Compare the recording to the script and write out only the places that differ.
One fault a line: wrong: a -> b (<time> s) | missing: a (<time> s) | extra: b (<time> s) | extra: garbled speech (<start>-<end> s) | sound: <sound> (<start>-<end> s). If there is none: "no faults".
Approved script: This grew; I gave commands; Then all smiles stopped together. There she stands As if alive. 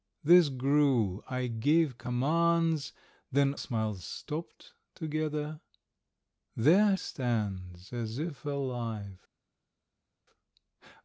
missing: all (3.5 s)
missing: she (7.0 s)